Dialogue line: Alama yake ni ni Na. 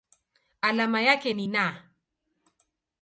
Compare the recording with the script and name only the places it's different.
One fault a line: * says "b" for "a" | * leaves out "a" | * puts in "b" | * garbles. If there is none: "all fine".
* leaves out "ni"